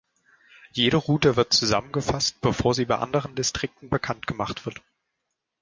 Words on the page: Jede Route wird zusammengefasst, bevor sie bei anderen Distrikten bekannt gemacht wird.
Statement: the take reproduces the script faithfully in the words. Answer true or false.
true